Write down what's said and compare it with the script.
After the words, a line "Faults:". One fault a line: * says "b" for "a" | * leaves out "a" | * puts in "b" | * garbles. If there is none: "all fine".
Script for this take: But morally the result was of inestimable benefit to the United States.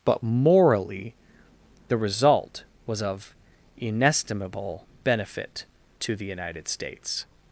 But morally the result was of inestimable benefit to the United States.
Faults:
all fine